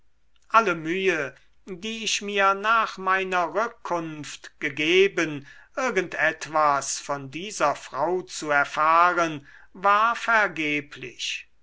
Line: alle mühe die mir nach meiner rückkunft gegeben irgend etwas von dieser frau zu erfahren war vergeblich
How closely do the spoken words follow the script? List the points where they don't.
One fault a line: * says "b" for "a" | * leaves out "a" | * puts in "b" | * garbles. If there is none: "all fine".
* puts in "ich"